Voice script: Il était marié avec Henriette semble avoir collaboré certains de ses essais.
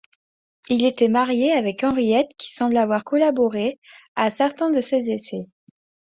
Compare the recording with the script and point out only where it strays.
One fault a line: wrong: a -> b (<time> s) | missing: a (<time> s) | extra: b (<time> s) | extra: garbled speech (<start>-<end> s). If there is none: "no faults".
extra: qui (2.4 s)
extra: à (4.1 s)